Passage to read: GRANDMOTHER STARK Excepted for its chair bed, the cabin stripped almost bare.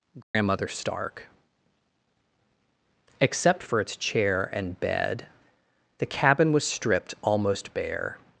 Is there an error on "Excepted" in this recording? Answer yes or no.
yes